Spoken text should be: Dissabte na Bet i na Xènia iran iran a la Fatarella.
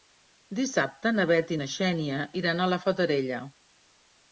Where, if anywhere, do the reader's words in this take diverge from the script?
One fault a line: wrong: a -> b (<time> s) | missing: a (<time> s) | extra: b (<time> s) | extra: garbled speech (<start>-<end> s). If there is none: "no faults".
missing: iran (2.6 s)